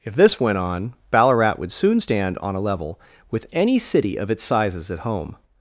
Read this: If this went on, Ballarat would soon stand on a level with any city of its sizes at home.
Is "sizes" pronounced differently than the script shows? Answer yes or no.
no